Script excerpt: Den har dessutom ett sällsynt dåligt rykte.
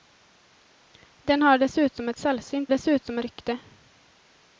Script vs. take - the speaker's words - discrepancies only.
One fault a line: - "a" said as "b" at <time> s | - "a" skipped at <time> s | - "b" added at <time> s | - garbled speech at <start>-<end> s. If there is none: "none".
- "dåligt" said as "dessutom" at 2.7 s